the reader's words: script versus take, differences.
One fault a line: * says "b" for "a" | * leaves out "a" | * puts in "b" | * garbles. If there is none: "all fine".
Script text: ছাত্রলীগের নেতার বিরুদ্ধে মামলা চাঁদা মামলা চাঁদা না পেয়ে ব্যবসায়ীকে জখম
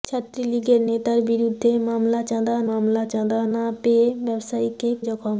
all fine